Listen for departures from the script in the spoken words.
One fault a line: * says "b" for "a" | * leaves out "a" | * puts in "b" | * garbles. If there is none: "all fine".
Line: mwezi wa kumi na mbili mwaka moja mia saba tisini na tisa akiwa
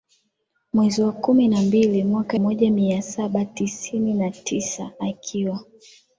all fine